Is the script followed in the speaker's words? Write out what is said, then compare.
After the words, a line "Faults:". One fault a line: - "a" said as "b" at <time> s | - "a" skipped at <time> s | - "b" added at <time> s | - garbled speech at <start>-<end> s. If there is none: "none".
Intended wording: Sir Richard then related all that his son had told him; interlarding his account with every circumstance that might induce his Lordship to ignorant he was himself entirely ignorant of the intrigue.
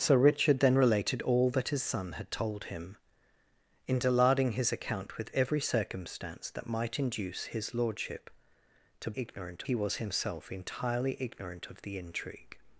Sir Richard then related all that his son had told him; interlarding his account with every circumstance that might induce his Lordship to ignorant he was himself entirely ignorant of the intrigue.
Faults:
none